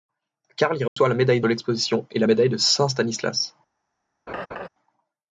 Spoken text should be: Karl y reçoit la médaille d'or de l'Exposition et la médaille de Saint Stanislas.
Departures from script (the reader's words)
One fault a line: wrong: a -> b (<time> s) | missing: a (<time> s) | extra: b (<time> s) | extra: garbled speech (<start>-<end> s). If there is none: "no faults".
missing: d'or (1.4 s)